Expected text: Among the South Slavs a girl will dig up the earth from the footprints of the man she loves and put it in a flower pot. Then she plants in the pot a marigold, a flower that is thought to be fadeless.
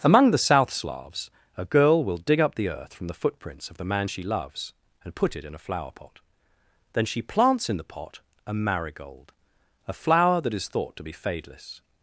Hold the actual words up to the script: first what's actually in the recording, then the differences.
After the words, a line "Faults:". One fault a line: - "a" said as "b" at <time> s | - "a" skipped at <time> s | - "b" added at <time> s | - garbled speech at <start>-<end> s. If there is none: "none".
Among the South Slavs a girl will dig up the earth from the footprints of the man she loves and put it in a flower pot. Then she plants in the pot a marigold, a flower that is thought to be fadeless.
Faults:
none